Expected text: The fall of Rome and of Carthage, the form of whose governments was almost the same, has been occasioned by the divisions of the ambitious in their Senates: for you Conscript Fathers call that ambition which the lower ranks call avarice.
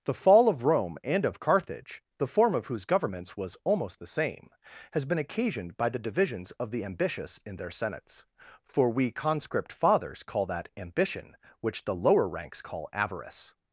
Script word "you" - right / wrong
wrong